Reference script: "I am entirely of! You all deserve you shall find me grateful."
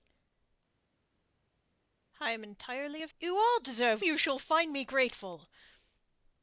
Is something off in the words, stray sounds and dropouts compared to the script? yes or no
no